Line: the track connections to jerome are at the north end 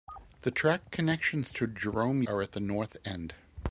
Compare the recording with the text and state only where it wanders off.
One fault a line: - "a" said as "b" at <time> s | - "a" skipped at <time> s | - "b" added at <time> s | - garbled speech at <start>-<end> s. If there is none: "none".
none